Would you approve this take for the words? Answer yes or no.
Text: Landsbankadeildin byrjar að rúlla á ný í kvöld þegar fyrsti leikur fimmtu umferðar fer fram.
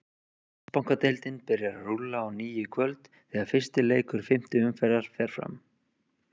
yes